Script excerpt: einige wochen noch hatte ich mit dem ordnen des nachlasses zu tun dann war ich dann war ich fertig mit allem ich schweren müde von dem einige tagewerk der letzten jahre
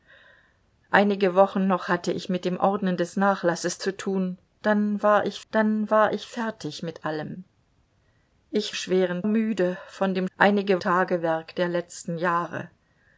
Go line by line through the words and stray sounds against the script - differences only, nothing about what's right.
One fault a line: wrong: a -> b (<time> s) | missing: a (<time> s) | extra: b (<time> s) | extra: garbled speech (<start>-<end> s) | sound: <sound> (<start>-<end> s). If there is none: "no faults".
no faults